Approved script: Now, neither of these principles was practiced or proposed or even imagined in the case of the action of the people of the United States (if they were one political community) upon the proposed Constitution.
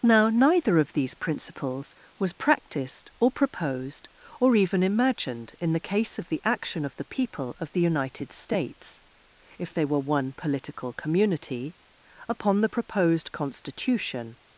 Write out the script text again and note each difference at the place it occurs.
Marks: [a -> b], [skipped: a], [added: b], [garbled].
Now, neither of these principles was practiced or proposed or even imagined in the case of the action of the people of the United States (if they were one political community) upon the proposed Constitution.